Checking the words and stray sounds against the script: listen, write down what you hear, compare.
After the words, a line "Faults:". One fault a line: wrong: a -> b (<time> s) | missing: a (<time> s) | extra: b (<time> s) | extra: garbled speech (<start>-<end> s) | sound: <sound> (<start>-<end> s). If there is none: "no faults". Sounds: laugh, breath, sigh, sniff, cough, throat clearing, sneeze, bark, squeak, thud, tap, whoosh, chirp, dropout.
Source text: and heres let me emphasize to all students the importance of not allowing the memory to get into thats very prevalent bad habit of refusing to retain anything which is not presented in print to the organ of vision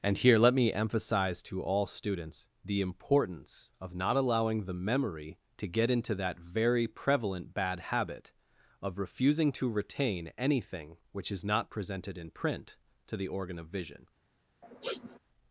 and here let me emphasize to all students the importance of not allowing the memory to get into that very prevalent bad habit of refusing to retain anything which is not presented in print to the organ of vision
Faults:
wrong: heres -> here (0.2 s)
wrong: thats -> that (6.2 s)
sound: sniff (14.6-15.2 s)